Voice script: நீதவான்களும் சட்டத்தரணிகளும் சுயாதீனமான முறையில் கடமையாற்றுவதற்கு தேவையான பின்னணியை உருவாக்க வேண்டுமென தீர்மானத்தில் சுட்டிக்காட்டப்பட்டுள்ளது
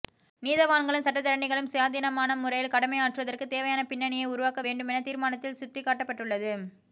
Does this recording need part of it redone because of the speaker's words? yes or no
no